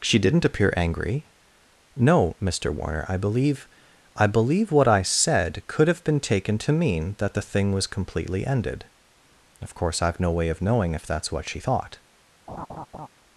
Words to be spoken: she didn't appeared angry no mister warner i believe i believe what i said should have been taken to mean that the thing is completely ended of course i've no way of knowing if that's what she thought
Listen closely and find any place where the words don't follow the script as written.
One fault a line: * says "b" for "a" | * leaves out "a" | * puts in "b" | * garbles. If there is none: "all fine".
* says "appear" for "appeared"
* says "could" for "should"
* says "was" for "is"